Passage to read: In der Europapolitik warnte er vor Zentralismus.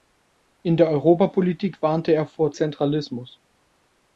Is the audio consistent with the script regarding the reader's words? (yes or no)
yes